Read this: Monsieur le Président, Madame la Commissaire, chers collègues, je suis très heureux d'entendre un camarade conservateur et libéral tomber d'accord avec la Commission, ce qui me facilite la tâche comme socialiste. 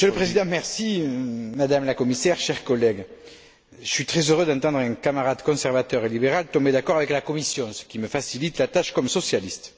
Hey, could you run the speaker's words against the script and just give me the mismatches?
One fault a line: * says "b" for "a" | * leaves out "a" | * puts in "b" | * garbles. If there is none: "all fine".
all fine